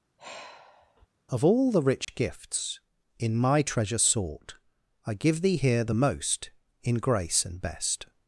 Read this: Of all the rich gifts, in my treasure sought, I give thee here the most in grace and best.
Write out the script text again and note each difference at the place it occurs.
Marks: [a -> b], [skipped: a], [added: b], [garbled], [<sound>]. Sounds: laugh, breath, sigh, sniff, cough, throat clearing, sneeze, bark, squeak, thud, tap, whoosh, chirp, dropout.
[sigh] Of all the rich [dropout] gifts, in my treasure sought, I give thee here the most in grace and best.